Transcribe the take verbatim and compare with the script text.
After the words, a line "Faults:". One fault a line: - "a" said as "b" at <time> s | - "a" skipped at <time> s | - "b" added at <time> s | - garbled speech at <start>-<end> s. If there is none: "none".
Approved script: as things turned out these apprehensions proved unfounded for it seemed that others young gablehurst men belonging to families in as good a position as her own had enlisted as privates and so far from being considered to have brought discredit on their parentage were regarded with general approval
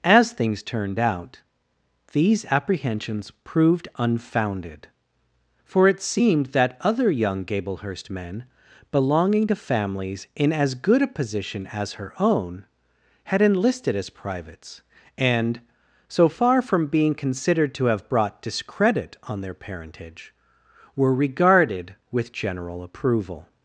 as things turned out these apprehensions proved unfounded for it seemed that other young gablehurst men belonging to families in as good a position as her own had enlisted as privates and so far from being considered to have brought discredit on their parentage were regarded with general approval
Faults:
- "others" said as "other" at 6.8 s